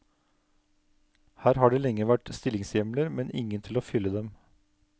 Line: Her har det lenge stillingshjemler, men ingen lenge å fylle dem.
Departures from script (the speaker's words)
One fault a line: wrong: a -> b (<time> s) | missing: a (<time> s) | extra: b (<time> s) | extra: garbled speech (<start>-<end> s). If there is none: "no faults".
extra: vært (2.1 s)
wrong: lenge -> til (3.7 s)